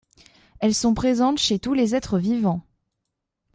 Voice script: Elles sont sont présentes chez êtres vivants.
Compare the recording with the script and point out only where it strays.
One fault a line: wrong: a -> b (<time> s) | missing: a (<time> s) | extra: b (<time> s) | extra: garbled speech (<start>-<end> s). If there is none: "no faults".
missing: sont (0.9 s)
extra: tous les (1.6 s)